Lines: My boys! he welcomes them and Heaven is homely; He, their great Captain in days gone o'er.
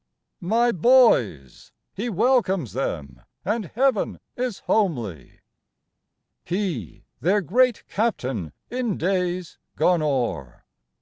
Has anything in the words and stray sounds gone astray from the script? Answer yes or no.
no